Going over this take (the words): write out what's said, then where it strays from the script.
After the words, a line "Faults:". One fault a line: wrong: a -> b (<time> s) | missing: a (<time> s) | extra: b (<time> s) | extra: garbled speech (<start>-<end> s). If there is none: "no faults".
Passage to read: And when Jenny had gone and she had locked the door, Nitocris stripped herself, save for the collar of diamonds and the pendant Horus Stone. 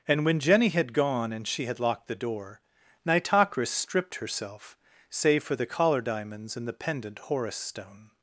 And when Jenny had gone and she had locked the door, Nitocris stripped herself, save for the collar diamonds and the pendant Horus Stone.
Faults:
missing: of (6.0 s)